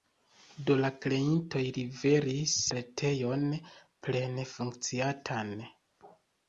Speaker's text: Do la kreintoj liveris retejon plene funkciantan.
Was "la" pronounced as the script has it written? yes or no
yes